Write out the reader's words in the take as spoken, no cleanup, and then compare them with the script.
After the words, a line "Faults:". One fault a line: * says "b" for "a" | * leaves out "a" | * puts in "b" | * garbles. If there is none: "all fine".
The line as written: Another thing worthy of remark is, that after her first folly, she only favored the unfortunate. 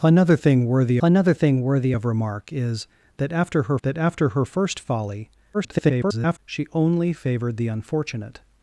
Another thing worthy another thing worthy of remark is, that after her that after her first folly, [garbled] she only favored the unfortunate.
Faults:
* puts in "another thing worthy"
* puts in "that after her"
* garbles